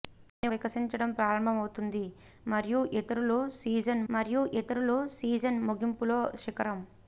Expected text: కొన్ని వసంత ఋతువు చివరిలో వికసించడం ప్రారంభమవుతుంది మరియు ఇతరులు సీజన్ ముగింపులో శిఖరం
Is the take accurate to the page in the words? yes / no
no